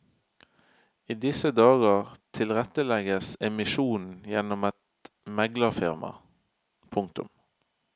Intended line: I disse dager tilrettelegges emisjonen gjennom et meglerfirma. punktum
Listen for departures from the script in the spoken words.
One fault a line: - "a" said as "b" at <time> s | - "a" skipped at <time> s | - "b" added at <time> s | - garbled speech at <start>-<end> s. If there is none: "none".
none